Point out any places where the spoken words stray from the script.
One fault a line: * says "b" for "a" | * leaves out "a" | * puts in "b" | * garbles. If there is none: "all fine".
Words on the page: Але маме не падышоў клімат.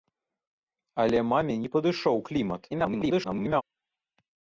* garbles